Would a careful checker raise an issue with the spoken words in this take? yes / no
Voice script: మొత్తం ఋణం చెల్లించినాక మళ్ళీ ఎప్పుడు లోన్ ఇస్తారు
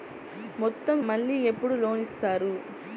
yes